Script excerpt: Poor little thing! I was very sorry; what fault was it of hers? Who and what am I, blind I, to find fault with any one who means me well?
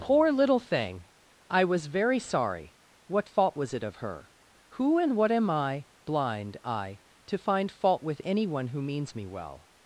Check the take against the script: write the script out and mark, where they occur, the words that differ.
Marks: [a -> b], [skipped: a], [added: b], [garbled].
Poor little thing! I was very sorry; what fault was it of [hers? -> her] Who and what am I, blind I, to find fault with any one who means me well?